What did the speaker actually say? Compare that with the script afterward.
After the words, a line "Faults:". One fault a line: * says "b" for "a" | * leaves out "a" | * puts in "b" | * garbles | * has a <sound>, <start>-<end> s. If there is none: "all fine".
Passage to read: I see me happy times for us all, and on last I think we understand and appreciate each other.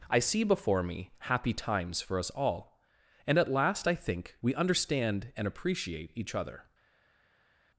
I see before me happy times for us all, and at last I think we understand and appreciate each other.
Faults:
* puts in "before"
* says "at" for "on"